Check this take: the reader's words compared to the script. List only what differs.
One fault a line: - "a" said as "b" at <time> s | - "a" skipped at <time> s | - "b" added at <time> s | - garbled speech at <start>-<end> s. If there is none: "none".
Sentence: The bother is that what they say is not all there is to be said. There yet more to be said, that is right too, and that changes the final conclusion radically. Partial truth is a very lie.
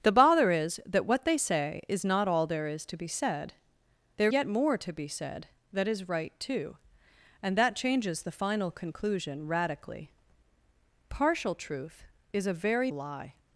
none